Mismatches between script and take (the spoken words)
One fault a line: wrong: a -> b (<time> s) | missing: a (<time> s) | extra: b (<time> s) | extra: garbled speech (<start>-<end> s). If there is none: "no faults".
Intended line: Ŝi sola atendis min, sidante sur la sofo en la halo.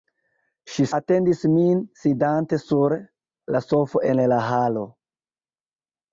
missing: sola (0.8 s)